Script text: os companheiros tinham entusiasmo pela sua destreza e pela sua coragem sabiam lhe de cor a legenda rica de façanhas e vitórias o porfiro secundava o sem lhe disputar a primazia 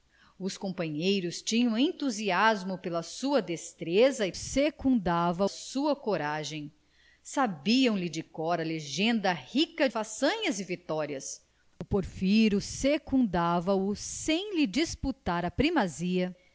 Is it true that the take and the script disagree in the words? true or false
true